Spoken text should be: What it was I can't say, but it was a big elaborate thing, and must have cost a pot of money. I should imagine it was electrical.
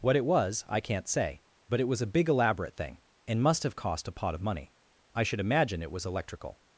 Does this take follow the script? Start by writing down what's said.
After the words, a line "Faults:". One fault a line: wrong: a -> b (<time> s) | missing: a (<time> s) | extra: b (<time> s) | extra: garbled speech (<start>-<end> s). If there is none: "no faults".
What it was I can't say, but it was a big elaborate thing, and must have cost a pot of money. I should imagine it was electrical.
Faults:
no faults